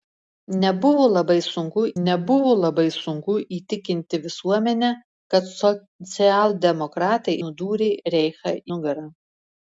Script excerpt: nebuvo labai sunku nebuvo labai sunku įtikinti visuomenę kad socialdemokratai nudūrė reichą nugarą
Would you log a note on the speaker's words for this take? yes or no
no